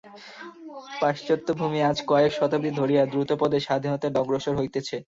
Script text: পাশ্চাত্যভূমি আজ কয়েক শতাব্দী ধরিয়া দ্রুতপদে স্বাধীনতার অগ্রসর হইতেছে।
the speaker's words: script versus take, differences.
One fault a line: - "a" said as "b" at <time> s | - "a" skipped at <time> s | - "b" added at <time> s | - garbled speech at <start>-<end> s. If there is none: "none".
none